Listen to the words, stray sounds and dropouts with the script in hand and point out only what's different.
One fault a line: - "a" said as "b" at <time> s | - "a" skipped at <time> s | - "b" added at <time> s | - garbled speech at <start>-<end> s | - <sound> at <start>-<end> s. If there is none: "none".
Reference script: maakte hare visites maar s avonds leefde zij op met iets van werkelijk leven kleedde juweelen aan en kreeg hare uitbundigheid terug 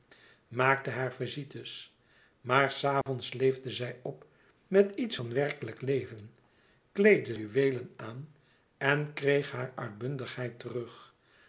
- dropout at 3.0-3.1 s